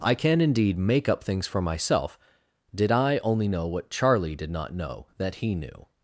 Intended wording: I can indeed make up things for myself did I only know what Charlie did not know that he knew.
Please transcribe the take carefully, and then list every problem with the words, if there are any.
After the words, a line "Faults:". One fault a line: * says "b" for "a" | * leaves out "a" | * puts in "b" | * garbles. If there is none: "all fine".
I can indeed make up things for myself did I only know what Charlie did not know that he knew.
Faults:
all fine